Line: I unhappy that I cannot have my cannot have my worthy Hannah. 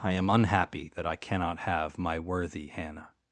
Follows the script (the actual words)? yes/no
no